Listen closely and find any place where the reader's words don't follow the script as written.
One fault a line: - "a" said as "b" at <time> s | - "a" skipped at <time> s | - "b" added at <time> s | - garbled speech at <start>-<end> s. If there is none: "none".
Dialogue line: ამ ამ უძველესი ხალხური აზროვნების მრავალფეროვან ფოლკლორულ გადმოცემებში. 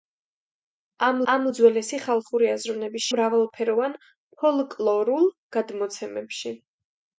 none